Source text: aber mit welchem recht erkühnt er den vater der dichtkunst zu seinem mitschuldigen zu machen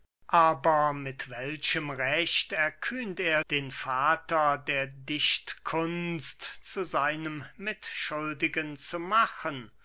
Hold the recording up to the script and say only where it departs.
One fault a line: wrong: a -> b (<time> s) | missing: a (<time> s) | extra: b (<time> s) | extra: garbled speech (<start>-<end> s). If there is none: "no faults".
no faults